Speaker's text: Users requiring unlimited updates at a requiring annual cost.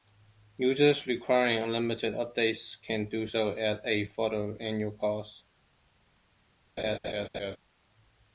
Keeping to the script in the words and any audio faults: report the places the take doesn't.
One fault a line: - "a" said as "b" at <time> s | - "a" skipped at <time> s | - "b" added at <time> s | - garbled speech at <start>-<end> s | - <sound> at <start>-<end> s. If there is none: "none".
- "can do so" added at 2.8 s
- "requiring" said as "further" at 4.0 s
- laugh at 6.8-7.6 s